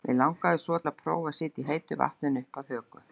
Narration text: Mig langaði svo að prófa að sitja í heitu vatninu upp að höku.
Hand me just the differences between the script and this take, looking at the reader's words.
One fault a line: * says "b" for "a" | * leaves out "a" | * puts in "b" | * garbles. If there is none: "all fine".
all fine